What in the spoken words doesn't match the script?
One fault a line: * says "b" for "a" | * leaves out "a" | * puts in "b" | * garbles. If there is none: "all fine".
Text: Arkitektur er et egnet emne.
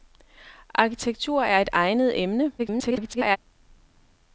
* garbles